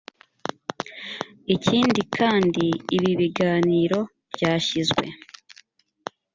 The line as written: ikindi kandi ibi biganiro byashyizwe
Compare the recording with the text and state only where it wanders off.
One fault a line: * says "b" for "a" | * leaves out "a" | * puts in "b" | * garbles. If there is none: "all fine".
all fine